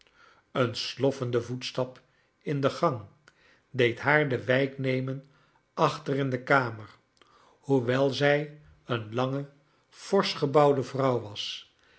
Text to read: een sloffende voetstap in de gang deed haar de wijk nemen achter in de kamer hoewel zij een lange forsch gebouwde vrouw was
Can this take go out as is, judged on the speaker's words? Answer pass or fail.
pass